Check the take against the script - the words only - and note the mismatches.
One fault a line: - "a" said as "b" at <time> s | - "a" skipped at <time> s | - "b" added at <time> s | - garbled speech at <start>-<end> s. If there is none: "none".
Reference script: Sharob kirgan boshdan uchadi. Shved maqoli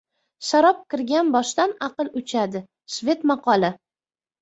- "aql" added at 1.9 s